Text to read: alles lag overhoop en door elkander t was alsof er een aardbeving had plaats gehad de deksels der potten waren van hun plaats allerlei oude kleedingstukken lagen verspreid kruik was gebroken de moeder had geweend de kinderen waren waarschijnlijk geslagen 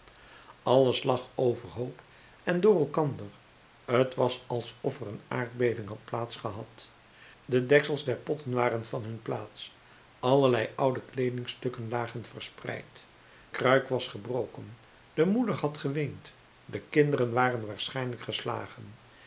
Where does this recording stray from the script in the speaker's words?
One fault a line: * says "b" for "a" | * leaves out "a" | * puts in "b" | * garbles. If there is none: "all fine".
all fine